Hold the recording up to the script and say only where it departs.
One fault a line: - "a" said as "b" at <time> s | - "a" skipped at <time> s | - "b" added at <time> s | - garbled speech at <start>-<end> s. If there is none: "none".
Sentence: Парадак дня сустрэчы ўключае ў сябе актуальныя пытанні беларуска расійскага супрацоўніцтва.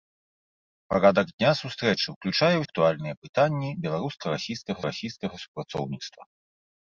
- "сябе" skipped at 2.6 s
- "расійскага" added at 4.9 s